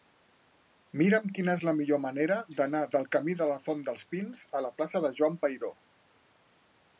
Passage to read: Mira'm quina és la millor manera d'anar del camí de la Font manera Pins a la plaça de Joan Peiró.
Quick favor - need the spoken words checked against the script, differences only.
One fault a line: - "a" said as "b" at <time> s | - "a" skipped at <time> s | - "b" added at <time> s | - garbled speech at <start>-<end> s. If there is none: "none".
- "manera" said as "dels" at 3.9 s